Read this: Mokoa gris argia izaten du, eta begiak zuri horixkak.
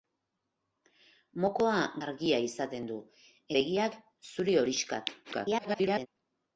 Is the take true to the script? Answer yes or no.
no